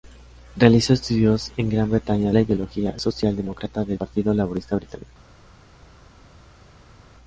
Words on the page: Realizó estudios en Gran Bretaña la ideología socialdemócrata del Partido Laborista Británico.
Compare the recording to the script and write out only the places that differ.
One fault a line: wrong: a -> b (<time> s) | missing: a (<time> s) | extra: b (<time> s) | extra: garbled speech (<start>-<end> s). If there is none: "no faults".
no faults